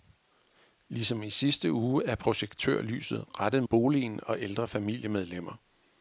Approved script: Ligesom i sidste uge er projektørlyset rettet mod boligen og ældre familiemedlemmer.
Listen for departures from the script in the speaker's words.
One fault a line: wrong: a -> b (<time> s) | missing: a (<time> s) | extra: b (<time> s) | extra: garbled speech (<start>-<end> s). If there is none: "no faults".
missing: mod (3.6 s)